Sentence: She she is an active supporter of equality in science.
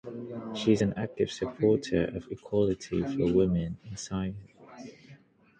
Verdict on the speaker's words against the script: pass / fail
fail